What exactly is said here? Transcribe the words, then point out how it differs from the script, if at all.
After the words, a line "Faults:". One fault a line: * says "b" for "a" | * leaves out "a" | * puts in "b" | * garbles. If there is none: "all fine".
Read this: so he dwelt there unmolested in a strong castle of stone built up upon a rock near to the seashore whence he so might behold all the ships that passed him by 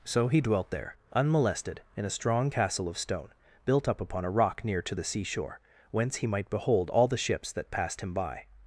so he dwelt there unmolested in a strong castle of stone built up upon a rock near to the seashore whence he might behold all the ships that passed him by
Faults:
* leaves out "so"